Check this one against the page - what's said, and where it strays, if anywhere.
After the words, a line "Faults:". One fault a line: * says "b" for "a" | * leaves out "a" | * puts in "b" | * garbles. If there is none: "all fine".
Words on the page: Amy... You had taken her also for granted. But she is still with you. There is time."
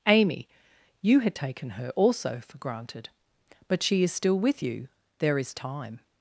Amy... You had taken her also for granted. But she is still with you. There is time."
Faults:
all fine